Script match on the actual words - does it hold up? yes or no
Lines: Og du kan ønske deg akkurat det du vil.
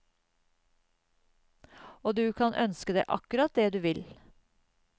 yes